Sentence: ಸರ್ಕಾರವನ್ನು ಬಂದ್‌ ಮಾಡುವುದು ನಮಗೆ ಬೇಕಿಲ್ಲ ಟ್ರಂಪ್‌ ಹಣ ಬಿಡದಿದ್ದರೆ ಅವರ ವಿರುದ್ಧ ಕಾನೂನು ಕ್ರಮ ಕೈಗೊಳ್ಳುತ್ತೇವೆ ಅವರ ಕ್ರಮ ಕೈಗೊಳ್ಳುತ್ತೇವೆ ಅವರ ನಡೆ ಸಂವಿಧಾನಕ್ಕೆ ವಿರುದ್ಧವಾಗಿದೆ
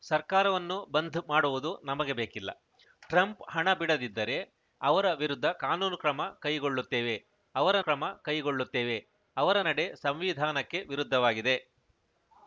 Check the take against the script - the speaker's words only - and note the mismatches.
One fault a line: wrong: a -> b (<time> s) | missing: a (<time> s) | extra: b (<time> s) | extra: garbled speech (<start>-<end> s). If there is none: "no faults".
no faults